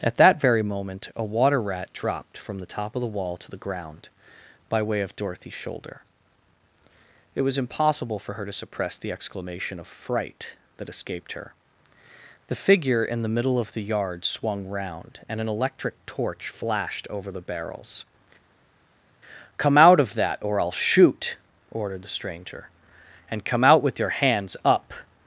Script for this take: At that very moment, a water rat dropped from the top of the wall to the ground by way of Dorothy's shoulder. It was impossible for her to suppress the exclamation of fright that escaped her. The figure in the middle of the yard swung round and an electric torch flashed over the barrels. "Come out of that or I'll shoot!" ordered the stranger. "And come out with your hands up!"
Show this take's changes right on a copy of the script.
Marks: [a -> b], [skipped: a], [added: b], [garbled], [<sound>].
At that very moment, a water rat dropped from the top of the wall to the ground by way of Dorothy's shoulder. It was impossible for her to suppress the exclamation of fright that escaped her. The figure in the middle of the yard swung round and an electric torch flashed over the barrels. "Come out of that or I'll shoot!" ordered the stranger. "And come out with your hands up!"